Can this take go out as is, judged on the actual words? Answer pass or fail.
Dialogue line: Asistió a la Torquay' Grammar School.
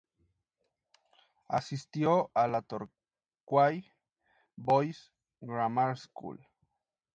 fail